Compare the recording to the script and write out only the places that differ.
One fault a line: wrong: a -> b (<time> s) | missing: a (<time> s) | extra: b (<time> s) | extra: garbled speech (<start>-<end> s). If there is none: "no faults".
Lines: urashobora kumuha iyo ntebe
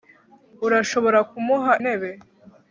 missing: iyo (1.7 s)